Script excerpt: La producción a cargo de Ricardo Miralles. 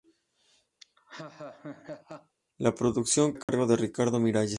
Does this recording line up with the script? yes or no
yes